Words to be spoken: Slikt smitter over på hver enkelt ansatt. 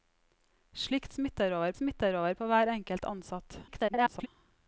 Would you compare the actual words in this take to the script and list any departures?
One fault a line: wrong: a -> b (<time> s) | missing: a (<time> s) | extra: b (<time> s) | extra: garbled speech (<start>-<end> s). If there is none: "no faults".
extra: smitter over (1.8 s)
extra: garbled speech (3.7-4.3 s)